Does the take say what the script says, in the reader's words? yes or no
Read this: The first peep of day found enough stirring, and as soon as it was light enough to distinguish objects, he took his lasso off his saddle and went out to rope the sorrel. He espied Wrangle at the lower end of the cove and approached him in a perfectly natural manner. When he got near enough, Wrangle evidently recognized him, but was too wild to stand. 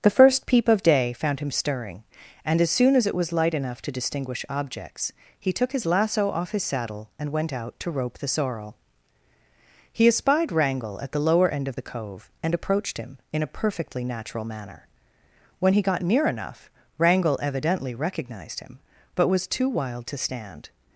no